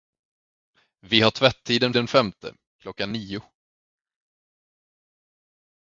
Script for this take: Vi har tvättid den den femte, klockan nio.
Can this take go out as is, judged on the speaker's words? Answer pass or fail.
pass